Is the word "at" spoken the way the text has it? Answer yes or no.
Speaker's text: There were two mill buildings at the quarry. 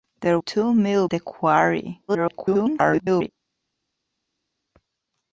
no